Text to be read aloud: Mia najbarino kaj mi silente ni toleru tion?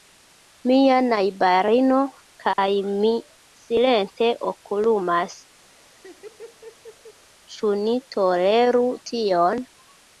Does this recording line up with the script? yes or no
no